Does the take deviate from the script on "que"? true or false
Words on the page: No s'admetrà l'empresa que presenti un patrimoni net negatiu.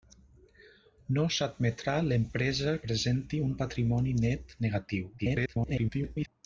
true